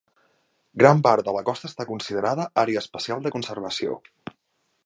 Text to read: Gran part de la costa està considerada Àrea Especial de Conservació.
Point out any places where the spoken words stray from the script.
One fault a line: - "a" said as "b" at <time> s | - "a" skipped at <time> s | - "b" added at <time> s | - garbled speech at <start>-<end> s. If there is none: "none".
none